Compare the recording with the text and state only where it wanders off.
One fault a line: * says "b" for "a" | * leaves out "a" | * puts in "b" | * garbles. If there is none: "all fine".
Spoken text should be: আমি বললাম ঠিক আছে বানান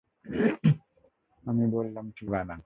* leaves out "আছে"